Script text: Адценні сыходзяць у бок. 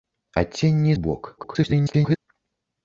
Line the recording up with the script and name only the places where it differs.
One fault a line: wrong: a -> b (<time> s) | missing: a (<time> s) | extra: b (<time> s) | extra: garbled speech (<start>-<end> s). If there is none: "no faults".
missing: сыходзяць (0.9 s)
extra: garbled speech (1.4-2.2 s)